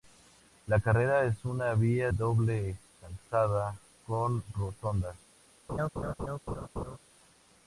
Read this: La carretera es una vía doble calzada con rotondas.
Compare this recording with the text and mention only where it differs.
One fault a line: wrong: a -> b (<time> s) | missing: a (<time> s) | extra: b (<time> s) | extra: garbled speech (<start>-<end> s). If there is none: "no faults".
no faults